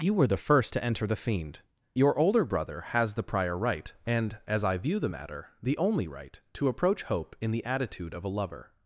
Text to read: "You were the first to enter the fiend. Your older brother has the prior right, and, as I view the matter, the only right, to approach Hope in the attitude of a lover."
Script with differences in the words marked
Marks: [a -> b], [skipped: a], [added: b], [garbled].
"You were the first to enter the fiend. Your older brother has the prior right, and, as I view the matter, the only right, to approach Hope in the attitude of a lover."